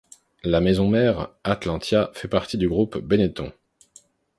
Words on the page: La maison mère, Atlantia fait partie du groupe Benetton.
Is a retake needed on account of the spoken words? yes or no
no